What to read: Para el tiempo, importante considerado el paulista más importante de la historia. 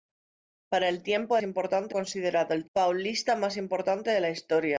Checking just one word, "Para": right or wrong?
right